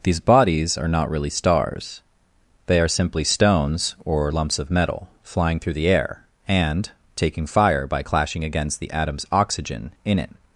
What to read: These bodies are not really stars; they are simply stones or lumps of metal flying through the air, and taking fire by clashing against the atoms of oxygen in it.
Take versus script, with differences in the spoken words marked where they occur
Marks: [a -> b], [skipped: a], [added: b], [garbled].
These bodies are not really stars; they are simply stones or lumps of metal flying through the air, and taking fire by clashing against the atoms [skipped: of] oxygen in it.